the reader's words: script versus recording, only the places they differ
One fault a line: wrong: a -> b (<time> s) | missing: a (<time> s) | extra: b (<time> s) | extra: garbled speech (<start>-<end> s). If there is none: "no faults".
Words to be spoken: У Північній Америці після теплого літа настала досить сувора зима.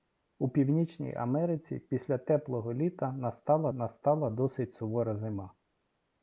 extra: настала (3.7 s)